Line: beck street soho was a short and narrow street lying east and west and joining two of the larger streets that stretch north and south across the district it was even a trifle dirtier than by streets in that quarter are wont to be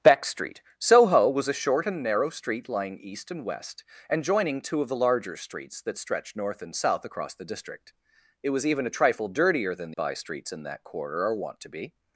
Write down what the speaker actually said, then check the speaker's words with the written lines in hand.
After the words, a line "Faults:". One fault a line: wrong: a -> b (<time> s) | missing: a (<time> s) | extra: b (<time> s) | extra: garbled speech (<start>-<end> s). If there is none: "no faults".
beck street soho was a short and narrow street lying east and west and joining two of the larger streets that stretch north and south across the district it was even a trifle dirtier than by streets in that quarter are wont to be
Faults:
no faults